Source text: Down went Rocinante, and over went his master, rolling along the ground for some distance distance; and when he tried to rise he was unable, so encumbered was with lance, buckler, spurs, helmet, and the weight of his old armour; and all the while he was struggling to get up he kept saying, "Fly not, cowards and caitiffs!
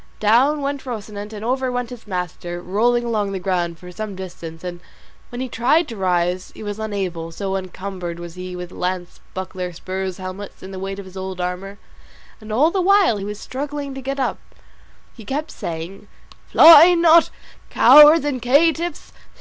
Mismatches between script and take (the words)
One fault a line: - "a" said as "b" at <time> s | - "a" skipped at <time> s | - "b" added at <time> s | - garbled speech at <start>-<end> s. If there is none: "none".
- "distance" skipped at 4.6 s
- "he" added at 8.3 s